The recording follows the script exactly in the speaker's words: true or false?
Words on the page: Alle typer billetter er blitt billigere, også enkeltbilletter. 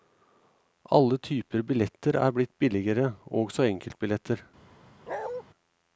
true